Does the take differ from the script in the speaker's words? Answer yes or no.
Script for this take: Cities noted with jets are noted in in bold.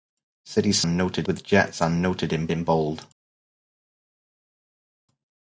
no